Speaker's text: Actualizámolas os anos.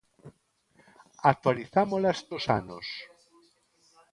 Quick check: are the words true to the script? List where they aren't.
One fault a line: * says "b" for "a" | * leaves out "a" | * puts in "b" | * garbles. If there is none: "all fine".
all fine